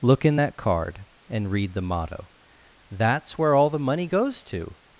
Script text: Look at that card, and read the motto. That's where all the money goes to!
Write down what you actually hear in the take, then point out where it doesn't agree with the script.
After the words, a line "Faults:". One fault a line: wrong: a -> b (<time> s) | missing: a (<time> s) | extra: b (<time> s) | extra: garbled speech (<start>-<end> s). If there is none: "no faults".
Look in that card, and read the motto. That's where all the money goes to!
Faults:
wrong: at -> in (0.2 s)